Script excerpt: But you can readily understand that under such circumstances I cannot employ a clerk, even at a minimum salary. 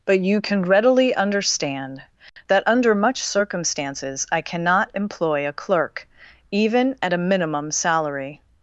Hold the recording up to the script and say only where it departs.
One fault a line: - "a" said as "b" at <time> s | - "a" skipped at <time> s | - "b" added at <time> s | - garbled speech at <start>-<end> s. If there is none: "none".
- "such" said as "much" at 3.0 s